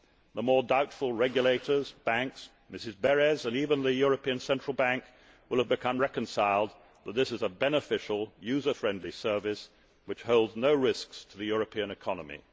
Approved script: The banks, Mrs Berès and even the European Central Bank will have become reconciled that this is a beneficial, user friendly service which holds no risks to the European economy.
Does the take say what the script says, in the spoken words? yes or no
no